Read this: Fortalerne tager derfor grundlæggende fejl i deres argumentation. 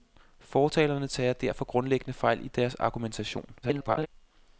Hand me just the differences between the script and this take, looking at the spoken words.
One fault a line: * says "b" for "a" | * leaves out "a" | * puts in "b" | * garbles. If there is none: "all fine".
* garbles